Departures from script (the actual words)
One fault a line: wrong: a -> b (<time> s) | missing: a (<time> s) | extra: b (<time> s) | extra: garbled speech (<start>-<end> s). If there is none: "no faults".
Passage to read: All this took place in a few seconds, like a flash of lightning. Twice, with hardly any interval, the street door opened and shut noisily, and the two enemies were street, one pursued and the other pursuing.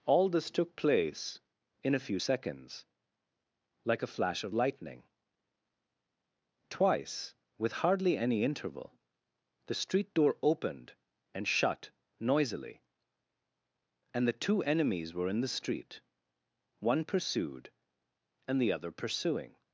extra: in the (15.3 s)